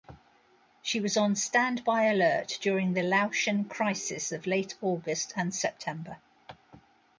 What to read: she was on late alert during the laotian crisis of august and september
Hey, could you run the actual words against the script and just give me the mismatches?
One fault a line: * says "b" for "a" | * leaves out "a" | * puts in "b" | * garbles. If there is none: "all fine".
* says "standby" for "late"
* puts in "late"